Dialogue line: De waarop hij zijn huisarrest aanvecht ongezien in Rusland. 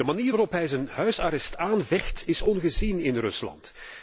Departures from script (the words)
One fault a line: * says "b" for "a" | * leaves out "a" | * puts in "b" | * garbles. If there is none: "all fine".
* puts in "manier"
* puts in "is"